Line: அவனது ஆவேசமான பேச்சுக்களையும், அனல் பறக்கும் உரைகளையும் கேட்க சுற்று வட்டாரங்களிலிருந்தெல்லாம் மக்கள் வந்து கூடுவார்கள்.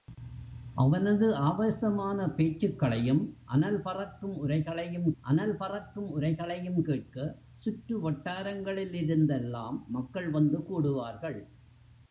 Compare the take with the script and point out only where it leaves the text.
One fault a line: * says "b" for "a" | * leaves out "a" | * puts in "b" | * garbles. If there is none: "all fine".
* puts in "அனல் பறக்கும் உரைகளையும்"